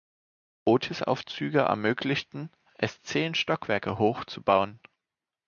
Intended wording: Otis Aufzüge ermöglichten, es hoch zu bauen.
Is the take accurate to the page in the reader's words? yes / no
no